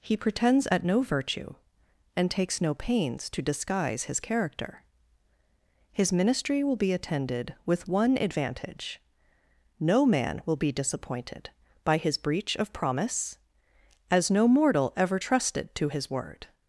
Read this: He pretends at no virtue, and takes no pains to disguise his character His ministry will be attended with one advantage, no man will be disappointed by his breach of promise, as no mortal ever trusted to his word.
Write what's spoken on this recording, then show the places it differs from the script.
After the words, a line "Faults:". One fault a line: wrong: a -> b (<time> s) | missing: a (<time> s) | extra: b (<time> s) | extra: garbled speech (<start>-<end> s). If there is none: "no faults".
He pretends at no virtue, and takes no pains to disguise his character His ministry will be attended with one advantage, no man will be disappointed by his breach of promise, as no mortal ever trusted to his word.
Faults:
no faults